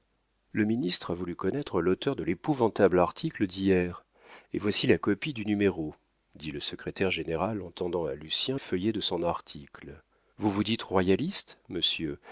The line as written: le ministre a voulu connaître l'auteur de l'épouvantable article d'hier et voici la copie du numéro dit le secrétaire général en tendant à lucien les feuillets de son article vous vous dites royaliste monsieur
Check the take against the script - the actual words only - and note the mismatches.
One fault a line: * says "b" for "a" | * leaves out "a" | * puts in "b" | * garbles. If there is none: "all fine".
* leaves out "les"